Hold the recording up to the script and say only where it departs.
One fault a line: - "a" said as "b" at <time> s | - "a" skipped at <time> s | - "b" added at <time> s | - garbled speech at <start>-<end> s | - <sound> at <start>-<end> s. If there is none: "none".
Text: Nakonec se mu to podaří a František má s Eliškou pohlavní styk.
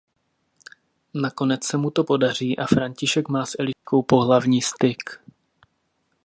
- dropout at 3.7-3.9 s